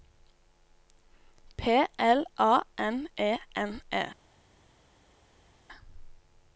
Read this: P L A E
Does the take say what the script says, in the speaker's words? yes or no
no